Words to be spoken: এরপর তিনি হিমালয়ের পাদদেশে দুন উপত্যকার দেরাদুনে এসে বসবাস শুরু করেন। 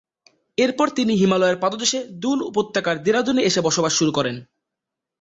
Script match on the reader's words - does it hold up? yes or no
yes